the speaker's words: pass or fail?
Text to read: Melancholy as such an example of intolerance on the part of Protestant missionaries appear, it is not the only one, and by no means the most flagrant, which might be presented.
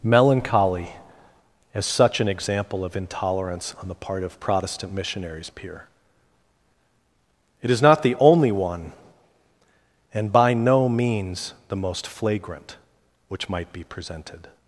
pass